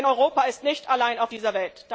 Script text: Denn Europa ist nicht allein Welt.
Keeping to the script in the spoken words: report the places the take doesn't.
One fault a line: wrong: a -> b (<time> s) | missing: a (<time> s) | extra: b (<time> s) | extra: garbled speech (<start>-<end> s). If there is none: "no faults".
extra: auf dieser (1.2 s)